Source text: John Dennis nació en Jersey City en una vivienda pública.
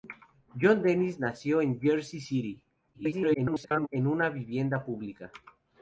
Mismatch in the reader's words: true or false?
true